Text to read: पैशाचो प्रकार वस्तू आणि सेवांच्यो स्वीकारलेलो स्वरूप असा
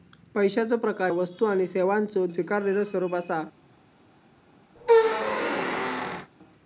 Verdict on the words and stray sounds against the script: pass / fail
fail